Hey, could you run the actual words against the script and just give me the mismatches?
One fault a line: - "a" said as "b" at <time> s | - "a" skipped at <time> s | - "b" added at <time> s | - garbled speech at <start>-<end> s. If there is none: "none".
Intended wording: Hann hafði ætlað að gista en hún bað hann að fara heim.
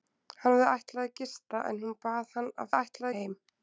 - "fara" said as "ætlað" at 2.8 s